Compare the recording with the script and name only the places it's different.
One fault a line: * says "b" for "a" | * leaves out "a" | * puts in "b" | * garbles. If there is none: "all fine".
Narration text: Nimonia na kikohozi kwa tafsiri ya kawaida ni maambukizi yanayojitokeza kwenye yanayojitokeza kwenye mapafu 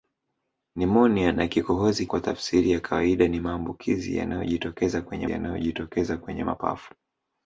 all fine